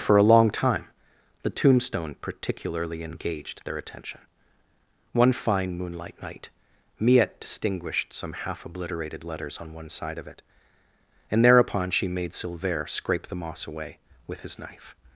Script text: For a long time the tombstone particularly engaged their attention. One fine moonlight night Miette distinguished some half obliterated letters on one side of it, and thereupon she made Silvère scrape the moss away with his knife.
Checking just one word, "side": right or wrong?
right